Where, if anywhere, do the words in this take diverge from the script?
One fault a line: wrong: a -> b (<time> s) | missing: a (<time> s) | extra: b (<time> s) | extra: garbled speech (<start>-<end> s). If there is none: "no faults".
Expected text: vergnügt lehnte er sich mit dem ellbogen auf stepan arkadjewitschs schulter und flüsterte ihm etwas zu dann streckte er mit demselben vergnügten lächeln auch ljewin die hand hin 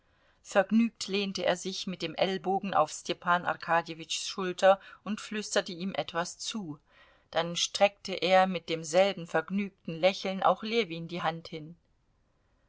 no faults